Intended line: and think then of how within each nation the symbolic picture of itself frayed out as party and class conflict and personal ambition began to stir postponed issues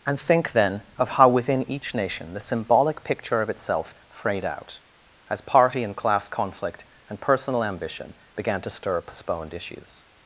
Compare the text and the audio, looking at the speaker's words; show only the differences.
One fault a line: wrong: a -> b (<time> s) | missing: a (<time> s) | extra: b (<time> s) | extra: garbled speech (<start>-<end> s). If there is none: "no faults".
no faults